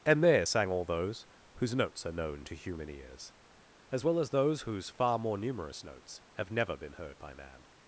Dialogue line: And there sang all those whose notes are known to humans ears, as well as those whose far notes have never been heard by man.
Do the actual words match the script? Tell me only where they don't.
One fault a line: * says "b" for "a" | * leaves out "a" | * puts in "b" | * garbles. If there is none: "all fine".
* says "human" for "humans"
* puts in "more numerous"